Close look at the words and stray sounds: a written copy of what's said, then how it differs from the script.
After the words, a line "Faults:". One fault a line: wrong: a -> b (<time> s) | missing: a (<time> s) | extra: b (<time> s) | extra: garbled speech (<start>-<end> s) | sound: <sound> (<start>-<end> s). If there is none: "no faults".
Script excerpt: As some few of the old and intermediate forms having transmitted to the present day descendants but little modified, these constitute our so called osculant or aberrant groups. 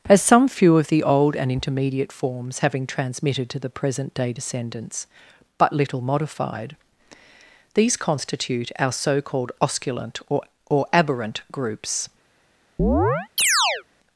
As some few of the old and intermediate forms having transmitted to the present day descendants but little modified, these constitute our so called osculant or or aberrant groups.
Faults:
extra: or (10.7 s)
sound: chirp (12.8-13.8 s)